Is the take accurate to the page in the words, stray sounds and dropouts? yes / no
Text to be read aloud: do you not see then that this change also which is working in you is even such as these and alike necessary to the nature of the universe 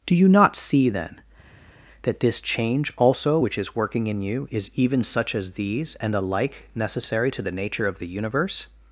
yes